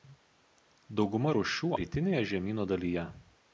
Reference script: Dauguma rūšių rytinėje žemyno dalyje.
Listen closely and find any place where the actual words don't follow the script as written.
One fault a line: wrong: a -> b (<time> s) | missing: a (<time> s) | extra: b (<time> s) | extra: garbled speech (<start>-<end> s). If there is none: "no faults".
no faults